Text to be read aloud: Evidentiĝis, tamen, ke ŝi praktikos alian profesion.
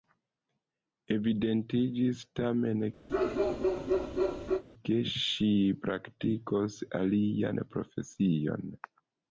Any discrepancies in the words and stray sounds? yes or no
yes